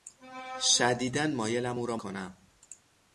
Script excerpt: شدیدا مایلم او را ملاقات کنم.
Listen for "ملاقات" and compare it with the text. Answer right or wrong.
wrong